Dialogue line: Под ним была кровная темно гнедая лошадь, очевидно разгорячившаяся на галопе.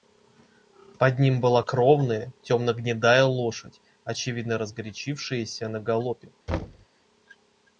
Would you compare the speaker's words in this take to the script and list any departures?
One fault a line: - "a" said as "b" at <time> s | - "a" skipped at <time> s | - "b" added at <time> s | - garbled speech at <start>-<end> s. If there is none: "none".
none